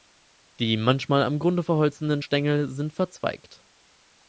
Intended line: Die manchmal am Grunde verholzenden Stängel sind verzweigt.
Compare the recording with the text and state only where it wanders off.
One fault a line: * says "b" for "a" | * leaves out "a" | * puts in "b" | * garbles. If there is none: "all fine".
all fine